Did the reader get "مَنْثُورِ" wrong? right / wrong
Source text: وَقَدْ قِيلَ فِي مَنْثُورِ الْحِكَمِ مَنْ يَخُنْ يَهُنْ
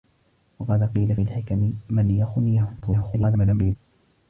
wrong